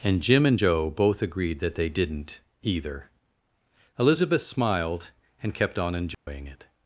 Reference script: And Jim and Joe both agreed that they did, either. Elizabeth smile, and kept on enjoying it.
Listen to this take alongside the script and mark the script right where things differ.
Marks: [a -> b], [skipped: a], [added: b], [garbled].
And Jim and Joe both agreed that they [did, -> didn't] either. Elizabeth [smile, -> smiled] and kept on enjoying it.